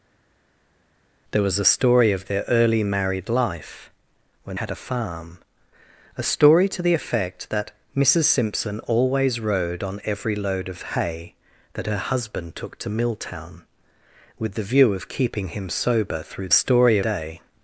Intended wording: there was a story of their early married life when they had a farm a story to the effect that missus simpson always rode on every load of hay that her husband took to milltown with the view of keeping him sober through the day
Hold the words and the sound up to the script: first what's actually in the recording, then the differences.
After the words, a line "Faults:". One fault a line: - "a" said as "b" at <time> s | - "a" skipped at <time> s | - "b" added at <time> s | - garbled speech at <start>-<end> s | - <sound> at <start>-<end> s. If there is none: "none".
there was a story of their early married life when had a farm a story to the effect that missus simpson always rode on every load of hay that her husband took to milltown with the view of keeping him sober through story day
Faults:
- "they" skipped at 4.6 s
- "the" said as "story" at 16.5 s